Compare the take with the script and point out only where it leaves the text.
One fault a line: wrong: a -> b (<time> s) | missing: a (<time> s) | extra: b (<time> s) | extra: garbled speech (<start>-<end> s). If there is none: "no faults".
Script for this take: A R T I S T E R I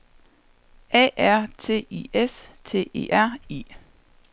no faults